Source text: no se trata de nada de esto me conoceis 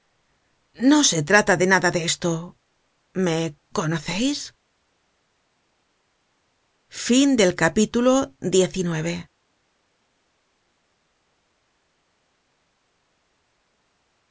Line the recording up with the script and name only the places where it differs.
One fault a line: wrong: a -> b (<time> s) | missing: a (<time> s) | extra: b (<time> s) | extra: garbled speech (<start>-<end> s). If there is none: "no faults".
no faults